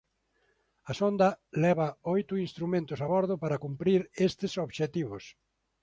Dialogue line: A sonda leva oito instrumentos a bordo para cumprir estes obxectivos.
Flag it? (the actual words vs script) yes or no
no